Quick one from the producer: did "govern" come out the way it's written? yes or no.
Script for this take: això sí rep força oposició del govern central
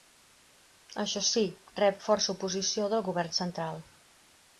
yes